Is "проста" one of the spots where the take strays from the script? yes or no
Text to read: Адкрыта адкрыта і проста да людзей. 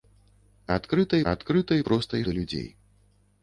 no